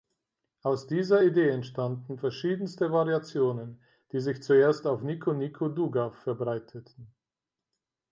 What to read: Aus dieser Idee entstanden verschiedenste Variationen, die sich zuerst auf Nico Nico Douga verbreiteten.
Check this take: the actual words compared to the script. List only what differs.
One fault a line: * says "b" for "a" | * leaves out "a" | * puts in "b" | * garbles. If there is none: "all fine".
all fine